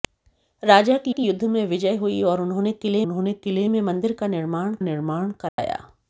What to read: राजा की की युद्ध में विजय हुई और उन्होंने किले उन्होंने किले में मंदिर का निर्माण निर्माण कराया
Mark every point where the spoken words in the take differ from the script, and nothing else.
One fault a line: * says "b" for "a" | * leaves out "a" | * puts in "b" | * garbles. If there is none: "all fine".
all fine